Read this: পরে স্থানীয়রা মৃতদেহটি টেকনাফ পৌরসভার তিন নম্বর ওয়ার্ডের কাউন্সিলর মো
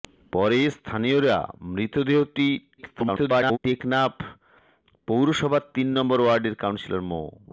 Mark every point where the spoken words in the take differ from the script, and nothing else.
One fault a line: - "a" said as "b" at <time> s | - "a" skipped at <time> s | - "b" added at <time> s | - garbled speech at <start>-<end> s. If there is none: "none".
- garbled speech at 2.8-3.6 s